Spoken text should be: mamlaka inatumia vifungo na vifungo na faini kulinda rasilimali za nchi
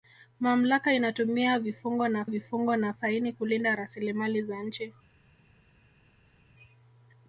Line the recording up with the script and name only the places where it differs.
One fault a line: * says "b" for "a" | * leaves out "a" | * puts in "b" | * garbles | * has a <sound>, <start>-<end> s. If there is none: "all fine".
all fine